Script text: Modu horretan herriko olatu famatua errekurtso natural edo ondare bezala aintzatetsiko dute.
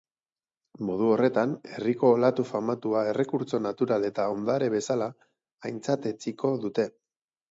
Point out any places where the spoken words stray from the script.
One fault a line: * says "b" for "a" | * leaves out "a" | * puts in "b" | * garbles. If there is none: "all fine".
* says "eta" for "edo"